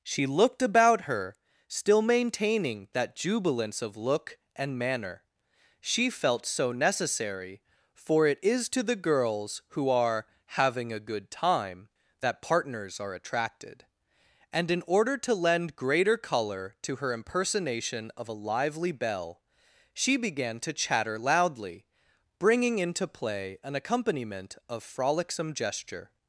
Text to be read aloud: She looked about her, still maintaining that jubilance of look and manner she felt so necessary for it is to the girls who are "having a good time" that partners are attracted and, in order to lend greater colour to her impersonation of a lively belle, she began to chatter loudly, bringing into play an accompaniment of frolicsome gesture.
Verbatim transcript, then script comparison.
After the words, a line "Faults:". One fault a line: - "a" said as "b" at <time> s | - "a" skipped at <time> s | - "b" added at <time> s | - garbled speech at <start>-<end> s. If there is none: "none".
She looked about her, still maintaining that jubilance of look and manner she felt so necessary for it is to the girls who are "having a good time" that partners are attracted and, in order to lend greater colour to her impersonation of a lively belle, she began to chatter loudly, bringing into play an accompaniment of frolicsome gesture.
Faults:
none